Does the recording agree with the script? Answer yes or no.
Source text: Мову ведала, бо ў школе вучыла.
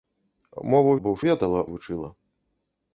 no